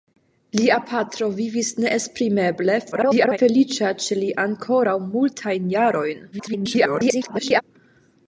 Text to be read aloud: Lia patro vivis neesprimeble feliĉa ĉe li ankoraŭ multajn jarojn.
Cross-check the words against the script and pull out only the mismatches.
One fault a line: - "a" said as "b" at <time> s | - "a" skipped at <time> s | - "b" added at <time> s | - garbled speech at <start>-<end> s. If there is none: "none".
- garbled speech at 2.9-3.4 s
- garbled speech at 6.3-7.6 s